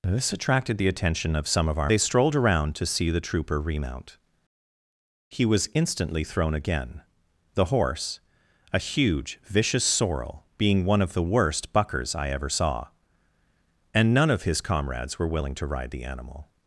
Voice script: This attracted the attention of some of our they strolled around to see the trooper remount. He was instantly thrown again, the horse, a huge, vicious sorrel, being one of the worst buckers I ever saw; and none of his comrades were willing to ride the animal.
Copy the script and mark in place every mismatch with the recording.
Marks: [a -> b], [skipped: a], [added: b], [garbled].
This attracted the attention of some of our they strolled around to see the trooper remount. He was instantly thrown again, the horse, a huge, vicious sorrel, being one of the worst buckers I ever saw; and none of his comrades were willing to ride the animal.